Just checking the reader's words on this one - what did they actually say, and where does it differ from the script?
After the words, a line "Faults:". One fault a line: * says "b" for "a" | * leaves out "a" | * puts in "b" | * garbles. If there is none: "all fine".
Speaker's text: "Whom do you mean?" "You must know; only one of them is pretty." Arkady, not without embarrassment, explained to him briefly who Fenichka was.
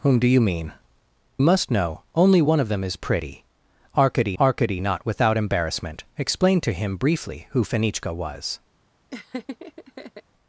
"Whom do you mean?" "Must know; only one of them is pretty." Arkady arkady, not without embarrassment, explained to him briefly who Fenichka was.
Faults:
* leaves out "You"
* puts in "arkady"